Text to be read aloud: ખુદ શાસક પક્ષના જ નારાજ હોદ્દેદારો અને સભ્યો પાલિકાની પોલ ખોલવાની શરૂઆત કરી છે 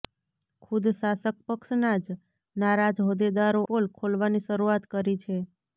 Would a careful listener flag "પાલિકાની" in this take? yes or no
yes